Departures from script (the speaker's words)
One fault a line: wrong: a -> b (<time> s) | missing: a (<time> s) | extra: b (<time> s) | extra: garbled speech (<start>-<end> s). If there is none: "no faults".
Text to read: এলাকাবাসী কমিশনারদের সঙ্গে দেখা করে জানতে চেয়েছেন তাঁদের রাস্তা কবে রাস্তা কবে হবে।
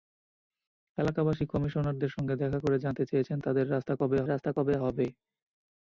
no faults